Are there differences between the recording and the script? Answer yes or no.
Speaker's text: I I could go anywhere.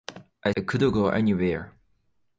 no